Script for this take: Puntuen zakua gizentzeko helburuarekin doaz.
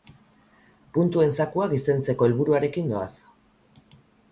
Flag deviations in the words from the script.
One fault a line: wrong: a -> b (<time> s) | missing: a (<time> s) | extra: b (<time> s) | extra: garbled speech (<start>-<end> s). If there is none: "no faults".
no faults